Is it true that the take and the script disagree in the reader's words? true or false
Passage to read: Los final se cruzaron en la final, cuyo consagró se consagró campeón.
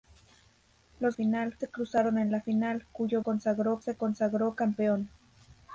false